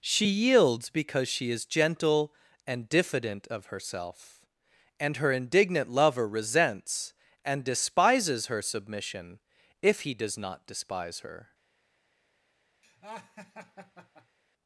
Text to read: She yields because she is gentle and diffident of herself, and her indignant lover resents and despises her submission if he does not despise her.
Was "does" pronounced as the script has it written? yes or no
yes